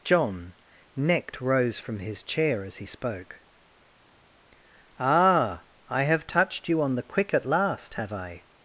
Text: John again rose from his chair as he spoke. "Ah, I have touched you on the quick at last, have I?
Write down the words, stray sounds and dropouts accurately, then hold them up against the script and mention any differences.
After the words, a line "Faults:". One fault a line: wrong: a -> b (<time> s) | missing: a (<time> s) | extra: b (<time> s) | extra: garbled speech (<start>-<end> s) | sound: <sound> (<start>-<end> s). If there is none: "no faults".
John necked rose from his chair as he spoke. "Ah, I have touched you on the quick at last, have I?
Faults:
wrong: again -> necked (0.9 s)